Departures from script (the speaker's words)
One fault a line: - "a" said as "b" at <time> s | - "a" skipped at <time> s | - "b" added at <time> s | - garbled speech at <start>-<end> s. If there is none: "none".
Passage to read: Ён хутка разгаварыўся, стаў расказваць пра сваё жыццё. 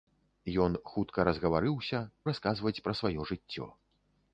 - "стаў" skipped at 2.0 s